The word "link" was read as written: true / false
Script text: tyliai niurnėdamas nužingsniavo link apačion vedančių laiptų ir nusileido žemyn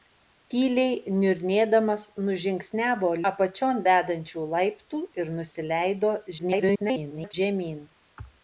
false